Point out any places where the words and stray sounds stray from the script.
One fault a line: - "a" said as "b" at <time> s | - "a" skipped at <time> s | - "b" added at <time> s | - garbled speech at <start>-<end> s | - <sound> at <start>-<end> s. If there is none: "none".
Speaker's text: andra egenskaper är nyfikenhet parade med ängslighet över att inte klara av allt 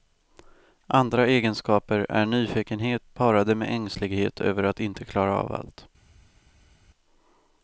none